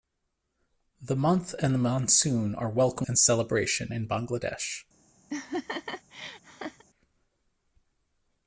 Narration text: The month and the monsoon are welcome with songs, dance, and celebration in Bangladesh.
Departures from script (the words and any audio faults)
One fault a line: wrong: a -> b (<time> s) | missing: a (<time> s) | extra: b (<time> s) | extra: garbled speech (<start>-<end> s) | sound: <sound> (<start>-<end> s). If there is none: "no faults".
missing: with songs dance (3.0 s)
sound: laugh (5.3-6.8 s)